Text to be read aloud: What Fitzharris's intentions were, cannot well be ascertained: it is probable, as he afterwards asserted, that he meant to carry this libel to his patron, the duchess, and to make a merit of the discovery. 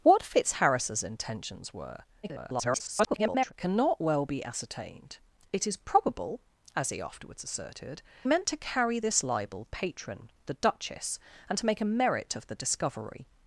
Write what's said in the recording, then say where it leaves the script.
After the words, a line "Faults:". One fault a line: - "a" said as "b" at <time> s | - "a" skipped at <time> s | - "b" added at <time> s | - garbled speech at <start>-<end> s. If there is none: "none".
What Fitzharris's intentions were, [garbled] cannot well be ascertained: it is probable, as he afterwards asserted, meant to carry this libel patron, the duchess, and to make a merit of the discovery.
Faults:
- garbled speech at 2.2-3.5 s
- "that he" skipped at 8.0 s
- "to his" skipped at 9.7 s